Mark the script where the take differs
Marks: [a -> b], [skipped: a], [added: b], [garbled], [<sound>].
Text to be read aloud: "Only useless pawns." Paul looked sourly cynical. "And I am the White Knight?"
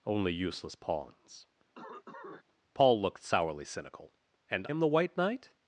"Only useless pawns." [cough] Paul looked sourly cynical. "And [skipped: I] am the White Knight?"